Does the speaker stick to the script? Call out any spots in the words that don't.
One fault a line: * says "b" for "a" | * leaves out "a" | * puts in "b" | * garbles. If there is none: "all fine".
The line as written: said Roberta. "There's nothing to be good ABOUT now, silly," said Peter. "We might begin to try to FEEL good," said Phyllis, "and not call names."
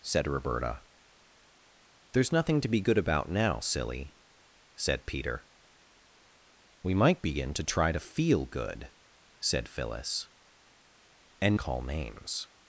* leaves out "not"